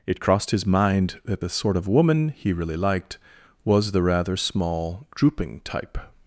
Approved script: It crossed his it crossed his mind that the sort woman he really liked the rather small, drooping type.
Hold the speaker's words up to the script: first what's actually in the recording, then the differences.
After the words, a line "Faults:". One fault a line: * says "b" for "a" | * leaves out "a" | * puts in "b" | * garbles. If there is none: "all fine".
It crossed his mind that the sort of woman he really liked was the rather small, drooping type.
Faults:
* leaves out "it crossed his"
* puts in "of"
* puts in "was"